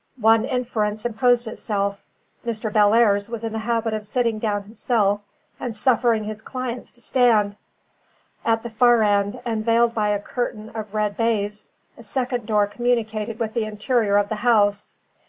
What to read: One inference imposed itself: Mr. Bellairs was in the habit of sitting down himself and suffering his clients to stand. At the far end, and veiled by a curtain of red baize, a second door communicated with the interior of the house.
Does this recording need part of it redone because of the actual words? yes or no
no